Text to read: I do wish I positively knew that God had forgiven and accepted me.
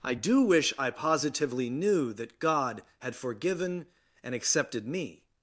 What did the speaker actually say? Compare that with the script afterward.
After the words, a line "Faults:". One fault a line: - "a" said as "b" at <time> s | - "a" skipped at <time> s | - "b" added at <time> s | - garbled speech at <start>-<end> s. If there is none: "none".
I do wish I positively knew that God had forgiven and accepted me.
Faults:
none